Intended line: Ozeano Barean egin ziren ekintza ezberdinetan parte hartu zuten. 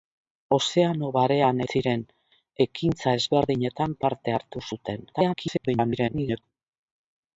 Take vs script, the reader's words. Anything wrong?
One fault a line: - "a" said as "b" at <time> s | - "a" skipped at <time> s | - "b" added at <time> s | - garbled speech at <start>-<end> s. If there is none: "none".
- "egin" skipped at 1.6 s
- garbled speech at 5.1-6.4 s